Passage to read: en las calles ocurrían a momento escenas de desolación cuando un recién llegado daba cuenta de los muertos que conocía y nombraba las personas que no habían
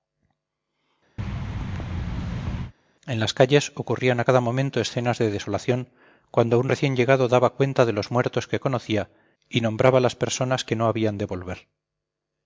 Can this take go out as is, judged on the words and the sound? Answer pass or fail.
fail